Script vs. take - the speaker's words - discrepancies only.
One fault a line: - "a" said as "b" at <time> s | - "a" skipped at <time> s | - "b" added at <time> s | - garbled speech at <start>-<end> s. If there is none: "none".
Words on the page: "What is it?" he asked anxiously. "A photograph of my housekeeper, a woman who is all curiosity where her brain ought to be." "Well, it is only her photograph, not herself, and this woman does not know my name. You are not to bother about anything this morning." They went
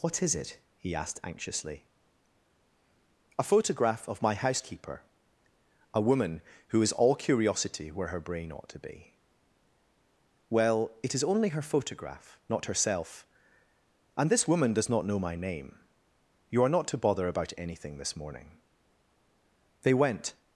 none